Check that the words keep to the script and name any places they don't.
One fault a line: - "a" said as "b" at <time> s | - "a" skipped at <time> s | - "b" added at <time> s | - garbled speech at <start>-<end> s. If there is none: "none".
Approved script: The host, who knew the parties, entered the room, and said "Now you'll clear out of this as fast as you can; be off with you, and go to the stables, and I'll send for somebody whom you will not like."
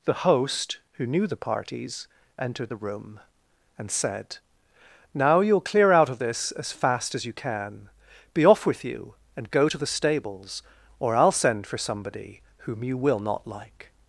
- "and" said as "or" at 11.0 s